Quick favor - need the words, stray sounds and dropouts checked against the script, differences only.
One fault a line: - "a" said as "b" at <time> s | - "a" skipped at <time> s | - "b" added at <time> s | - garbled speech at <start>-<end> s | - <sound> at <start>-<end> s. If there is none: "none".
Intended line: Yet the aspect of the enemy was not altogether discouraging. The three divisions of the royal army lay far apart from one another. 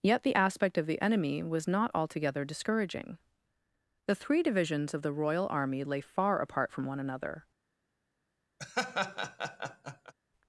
- laugh at 8.6-10.1 s